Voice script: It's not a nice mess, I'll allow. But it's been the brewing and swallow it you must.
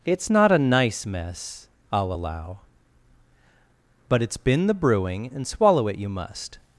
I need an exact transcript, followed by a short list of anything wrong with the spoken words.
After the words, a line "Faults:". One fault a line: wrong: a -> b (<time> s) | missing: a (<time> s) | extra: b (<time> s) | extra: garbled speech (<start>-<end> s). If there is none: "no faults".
It's not a nice mess, I'll allow. But it's been the brewing and swallow it you must.
Faults:
no faults